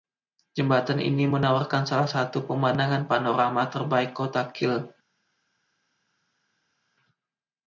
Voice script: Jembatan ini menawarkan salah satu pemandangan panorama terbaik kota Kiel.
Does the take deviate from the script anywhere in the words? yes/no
no